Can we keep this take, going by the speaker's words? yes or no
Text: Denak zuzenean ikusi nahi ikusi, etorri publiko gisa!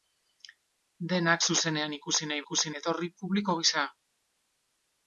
yes